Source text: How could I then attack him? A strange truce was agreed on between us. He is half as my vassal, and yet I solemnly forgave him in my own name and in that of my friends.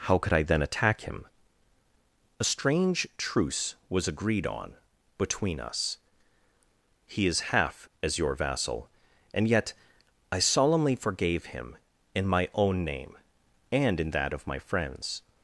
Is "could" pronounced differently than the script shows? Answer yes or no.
no